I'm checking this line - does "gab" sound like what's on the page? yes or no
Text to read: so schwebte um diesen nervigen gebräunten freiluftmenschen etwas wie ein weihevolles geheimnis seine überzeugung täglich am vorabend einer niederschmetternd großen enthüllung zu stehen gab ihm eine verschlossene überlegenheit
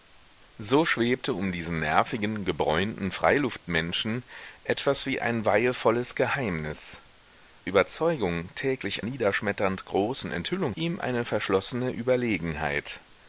no